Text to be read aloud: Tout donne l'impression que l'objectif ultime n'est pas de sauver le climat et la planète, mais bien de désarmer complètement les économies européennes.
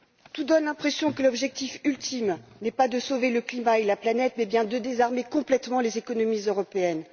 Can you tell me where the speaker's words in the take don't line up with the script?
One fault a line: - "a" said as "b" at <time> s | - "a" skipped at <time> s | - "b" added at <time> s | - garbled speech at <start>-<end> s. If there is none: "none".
none